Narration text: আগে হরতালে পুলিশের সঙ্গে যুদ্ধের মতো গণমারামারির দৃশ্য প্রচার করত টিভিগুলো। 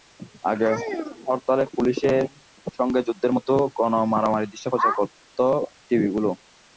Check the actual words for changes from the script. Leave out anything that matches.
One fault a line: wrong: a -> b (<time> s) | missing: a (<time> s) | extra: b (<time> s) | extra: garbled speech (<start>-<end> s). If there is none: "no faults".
no faults